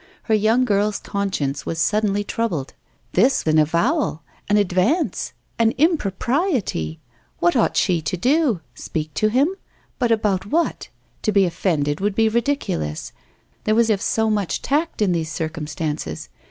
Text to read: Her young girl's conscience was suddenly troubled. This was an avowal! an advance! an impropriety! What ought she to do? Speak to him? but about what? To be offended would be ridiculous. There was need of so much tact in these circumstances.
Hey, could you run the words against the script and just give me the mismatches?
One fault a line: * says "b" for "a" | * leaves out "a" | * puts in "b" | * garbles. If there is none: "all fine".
* leaves out "was"
* leaves out "need"